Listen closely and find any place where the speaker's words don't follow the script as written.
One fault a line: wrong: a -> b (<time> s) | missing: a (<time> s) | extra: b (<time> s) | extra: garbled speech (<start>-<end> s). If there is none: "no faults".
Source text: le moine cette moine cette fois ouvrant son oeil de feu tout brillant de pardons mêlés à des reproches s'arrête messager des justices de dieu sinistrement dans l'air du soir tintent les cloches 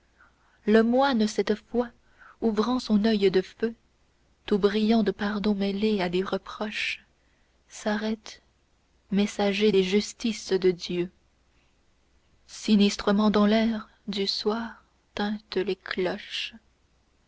missing: moine cette (1.5 s)